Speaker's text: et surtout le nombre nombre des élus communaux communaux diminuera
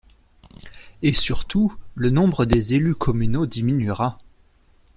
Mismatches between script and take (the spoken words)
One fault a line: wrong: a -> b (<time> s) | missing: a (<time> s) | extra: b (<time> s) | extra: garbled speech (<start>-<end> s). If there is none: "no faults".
missing: nombre (2.5 s)
missing: communaux (3.5 s)